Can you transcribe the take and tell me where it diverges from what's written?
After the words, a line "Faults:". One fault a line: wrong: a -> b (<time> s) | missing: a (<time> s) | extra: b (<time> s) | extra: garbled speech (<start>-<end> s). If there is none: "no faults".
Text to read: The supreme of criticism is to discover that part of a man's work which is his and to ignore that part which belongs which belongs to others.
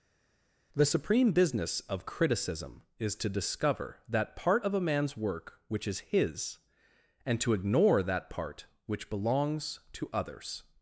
The supreme business of criticism is to discover that part of a man's work which is his and to ignore that part which belongs to others.
Faults:
extra: business (1.3 s)
missing: which belongs (9.8 s)